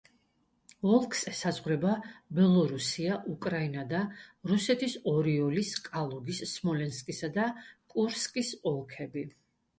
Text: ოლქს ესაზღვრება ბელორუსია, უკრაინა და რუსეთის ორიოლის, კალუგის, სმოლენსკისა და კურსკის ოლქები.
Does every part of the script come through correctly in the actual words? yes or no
yes